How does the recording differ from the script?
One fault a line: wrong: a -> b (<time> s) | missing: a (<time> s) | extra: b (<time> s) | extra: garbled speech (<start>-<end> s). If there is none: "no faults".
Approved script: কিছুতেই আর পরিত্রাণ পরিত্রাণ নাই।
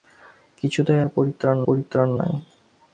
no faults